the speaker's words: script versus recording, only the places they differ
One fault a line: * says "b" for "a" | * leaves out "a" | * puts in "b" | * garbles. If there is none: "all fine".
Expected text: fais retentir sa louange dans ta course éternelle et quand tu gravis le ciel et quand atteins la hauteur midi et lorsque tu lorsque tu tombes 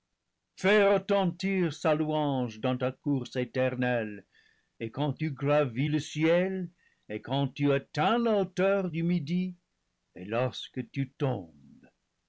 * puts in "tu"
* puts in "du"
* leaves out "lorsque tu"